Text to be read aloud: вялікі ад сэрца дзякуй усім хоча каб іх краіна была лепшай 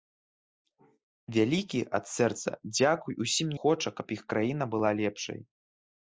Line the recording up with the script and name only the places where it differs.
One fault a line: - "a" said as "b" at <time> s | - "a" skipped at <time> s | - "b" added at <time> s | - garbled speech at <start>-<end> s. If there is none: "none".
none